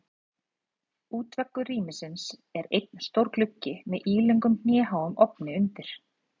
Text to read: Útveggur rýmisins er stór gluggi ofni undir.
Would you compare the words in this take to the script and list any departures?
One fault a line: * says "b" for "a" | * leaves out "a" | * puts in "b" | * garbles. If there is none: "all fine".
* puts in "einn"
* puts in "með ílöngum hnéháum"